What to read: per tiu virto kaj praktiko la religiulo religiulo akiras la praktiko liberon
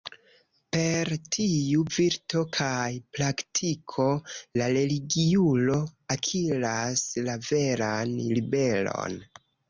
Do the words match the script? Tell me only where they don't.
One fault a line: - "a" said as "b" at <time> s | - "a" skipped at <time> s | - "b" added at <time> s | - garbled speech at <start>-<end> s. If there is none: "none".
- "religiulo" skipped at 5.8 s
- "praktiko" said as "veran" at 7.5 s